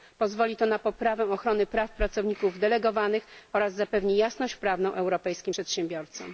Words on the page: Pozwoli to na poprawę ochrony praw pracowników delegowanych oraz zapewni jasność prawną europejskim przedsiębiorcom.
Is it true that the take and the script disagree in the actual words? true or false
false